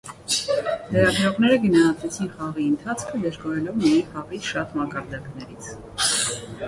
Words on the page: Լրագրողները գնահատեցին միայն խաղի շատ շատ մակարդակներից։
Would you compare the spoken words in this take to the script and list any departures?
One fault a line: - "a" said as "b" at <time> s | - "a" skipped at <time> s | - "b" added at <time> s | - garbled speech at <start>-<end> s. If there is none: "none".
- "խաղի ընթացքը դժգոհելով" added at 2.4 s
- "շատ" skipped at 4.8 s